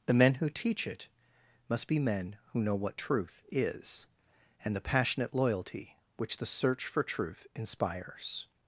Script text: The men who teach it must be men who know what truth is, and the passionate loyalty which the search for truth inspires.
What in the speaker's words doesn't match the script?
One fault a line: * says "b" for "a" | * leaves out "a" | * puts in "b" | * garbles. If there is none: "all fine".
all fine